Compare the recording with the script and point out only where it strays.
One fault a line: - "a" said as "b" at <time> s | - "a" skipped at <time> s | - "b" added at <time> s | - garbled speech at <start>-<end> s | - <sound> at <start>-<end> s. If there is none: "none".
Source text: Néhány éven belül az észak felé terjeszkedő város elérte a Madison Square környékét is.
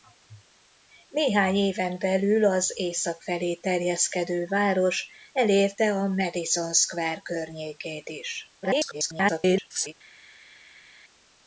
- garbled speech at 8.6-9.9 s